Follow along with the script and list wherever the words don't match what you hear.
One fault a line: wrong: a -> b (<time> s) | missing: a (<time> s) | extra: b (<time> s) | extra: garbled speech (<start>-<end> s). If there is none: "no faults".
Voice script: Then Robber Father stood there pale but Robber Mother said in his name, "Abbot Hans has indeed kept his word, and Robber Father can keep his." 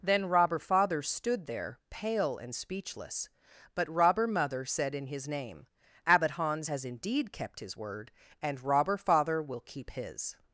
extra: and speechless (2.4 s)
wrong: can -> will (9.4 s)